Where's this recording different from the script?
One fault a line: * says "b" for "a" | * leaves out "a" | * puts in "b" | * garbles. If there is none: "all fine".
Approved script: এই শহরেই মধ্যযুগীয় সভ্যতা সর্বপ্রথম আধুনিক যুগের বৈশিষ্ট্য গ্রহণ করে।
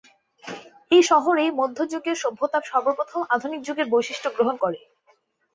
all fine